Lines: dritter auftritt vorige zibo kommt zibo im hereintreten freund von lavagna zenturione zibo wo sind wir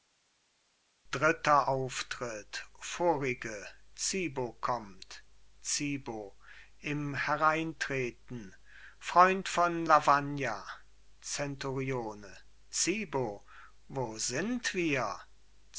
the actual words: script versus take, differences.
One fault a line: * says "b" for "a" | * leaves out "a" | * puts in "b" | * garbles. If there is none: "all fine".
all fine